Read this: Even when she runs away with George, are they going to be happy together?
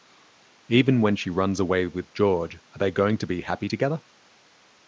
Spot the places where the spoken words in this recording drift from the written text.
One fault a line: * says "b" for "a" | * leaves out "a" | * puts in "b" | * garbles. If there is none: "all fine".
all fine